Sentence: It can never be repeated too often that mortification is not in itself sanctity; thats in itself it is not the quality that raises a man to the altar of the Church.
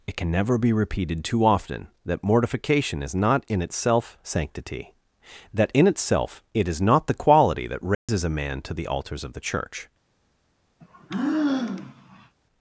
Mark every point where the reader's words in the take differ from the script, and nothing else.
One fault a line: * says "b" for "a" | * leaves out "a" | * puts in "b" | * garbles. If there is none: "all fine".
* says "that" for "thats"
* says "altars" for "altar"